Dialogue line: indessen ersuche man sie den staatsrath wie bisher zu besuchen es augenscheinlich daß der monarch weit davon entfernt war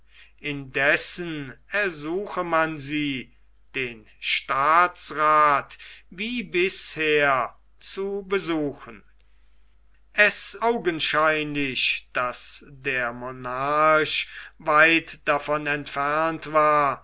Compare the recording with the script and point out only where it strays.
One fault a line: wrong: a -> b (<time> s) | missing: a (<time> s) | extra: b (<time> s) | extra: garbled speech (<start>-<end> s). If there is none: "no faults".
no faults